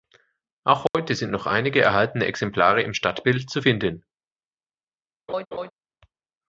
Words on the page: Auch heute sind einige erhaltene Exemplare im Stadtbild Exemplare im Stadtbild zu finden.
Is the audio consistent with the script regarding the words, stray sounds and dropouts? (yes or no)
no